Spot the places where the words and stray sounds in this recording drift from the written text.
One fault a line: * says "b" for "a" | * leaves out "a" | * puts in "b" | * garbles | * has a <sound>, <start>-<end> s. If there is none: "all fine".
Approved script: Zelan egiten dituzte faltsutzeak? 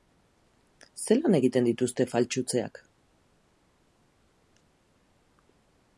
all fine